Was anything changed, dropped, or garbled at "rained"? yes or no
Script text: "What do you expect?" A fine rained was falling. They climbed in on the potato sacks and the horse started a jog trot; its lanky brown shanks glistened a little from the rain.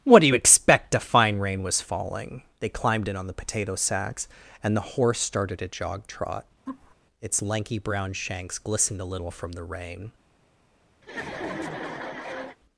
yes